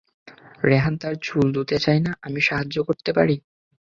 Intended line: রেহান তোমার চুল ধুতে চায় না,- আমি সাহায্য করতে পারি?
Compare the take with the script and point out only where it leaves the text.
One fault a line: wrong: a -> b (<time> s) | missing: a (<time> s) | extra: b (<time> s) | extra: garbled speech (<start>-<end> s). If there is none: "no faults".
wrong: তোমার -> তার (1.0 s)